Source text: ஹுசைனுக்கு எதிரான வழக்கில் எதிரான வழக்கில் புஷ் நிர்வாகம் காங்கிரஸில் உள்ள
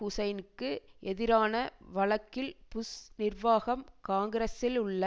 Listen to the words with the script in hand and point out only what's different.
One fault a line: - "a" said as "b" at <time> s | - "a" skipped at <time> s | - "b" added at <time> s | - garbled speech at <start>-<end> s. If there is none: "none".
- "எதிரான வழக்கில்" skipped at 2.5 s